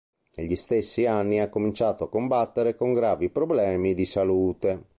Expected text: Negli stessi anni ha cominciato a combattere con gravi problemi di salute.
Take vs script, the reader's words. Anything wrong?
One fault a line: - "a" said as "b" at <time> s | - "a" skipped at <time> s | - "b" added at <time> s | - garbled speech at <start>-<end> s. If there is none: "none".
none